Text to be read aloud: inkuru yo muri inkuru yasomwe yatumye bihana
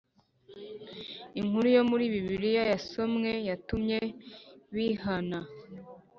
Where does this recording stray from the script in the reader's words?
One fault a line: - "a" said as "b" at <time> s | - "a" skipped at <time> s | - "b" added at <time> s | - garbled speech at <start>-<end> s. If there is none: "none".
- "inkuru" said as "bibiliya" at 2.1 s